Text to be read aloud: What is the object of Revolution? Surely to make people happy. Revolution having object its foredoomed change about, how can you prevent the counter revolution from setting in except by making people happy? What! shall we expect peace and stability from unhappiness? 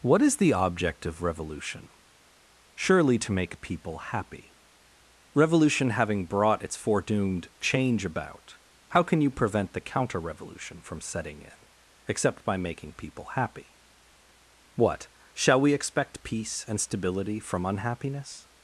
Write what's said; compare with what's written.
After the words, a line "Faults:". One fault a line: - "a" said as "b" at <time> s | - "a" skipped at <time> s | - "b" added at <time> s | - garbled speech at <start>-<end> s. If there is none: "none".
What is the object of Revolution? Surely to make people happy. Revolution having brought its foredoomed change about, how can you prevent the counter revolution from setting in except by making people happy? What! shall we expect peace and stability from unhappiness?
Faults:
- "object" said as "brought" at 6.2 s